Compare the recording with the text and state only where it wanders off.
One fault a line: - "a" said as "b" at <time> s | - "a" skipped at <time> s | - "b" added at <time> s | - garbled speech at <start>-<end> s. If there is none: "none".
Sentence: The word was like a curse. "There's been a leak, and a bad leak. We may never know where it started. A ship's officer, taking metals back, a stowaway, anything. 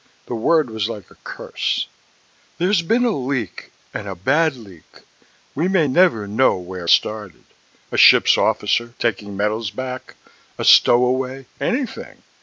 - "it" skipped at 6.9 s